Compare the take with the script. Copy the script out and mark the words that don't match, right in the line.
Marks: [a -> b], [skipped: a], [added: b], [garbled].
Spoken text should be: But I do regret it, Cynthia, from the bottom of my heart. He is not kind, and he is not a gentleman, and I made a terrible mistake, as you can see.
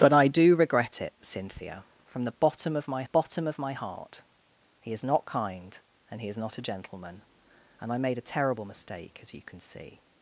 But I do regret it, Cynthia, from the bottom of my [added: bottom of my] heart. He is not kind, and he is not a gentleman, and I made a terrible mistake, as you can see.